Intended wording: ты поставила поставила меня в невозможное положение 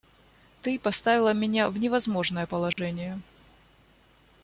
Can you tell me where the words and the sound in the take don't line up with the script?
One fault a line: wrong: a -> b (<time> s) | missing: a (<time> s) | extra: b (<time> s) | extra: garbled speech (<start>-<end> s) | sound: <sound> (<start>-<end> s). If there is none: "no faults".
missing: поставила (1.3 s)
sound: dropout (2.7-2.8 s)